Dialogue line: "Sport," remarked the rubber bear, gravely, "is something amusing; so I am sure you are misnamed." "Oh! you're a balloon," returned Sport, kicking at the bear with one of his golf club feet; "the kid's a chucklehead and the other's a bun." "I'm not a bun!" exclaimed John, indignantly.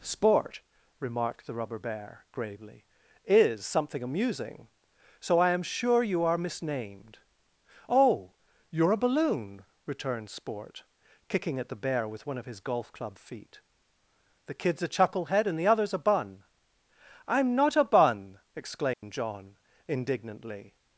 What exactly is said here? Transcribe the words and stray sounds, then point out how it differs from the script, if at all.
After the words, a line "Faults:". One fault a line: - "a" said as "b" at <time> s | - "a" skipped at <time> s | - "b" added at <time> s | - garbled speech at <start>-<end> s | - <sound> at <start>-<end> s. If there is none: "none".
"Sport," remarked the rubber bear, gravely, "is something amusing; so I am sure you are misnamed." "Oh! you're a balloon," returned Sport, kicking at the bear with one of his golf club feet; "the kid's a chucklehead and the other's a bun." "I'm not a bun!" exclaimed John, indignantly.
Faults:
- dropout at 18.9-19.0 s